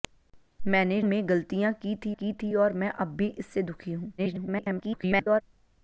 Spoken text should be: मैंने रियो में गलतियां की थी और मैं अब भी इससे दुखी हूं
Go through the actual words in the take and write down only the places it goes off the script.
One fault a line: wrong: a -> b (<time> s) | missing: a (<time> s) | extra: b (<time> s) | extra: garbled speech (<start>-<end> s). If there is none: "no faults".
missing: रियो (1.0 s)
extra: की थी (2.1 s)
extra: garbled speech (4.2-5.4 s)